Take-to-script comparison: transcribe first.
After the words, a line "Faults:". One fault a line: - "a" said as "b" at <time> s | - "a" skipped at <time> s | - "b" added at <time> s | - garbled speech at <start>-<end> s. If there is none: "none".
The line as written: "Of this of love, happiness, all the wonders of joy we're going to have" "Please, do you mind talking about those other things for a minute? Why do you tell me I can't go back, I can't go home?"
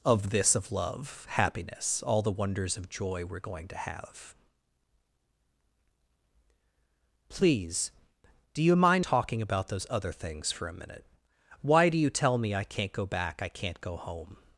"Of this of love, happiness, all the wonders of joy we're going to have" "Please, do you mind talking about those other things for a minute? Why do you tell me I can't go back, I can't go home?"
Faults:
none